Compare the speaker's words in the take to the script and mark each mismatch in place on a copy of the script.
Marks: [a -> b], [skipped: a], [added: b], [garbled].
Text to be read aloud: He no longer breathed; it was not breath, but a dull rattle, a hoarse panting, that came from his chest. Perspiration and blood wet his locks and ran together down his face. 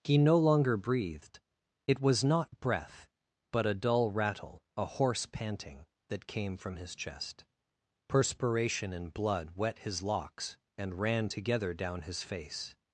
He no longer breathed; it was not breath, but a dull rattle, a hoarse panting, that came from his chest. Perspiration and blood wet his locks and ran together down his face.